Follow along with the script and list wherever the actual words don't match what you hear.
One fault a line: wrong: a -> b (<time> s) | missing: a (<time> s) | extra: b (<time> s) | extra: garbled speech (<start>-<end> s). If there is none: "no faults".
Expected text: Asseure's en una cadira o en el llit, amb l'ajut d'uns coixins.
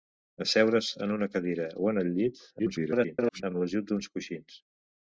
extra: garbled speech (2.6-3.4 s)